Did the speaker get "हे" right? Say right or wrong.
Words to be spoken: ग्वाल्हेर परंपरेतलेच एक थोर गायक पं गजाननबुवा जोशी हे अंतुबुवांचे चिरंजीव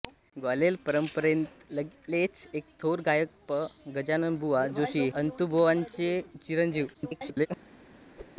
wrong